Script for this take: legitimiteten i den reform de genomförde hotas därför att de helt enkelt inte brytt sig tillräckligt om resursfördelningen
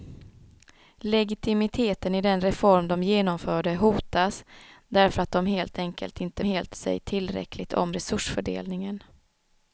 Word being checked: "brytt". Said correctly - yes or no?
no